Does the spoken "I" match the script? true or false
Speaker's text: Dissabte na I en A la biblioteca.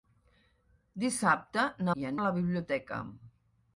true